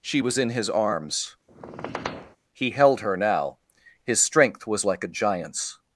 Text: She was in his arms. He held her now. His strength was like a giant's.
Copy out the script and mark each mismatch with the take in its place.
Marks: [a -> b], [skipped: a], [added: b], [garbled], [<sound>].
She was in his arms. [squeak] He held her now. His strength was like a giant's.